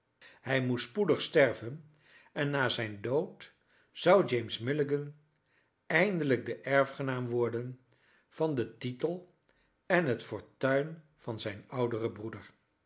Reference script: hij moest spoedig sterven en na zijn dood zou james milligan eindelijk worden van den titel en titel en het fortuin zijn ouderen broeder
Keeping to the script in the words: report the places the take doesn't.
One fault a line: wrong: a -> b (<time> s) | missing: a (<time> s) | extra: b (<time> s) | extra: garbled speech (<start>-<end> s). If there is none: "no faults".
extra: de erfgenaam (6.5 s)
missing: titel en (10.1 s)
extra: van (11.2 s)